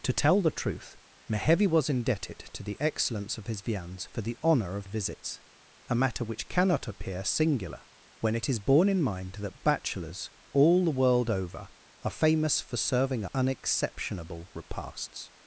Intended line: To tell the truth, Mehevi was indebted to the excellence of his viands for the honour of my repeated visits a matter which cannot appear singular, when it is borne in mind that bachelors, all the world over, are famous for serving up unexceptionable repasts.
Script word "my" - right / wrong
wrong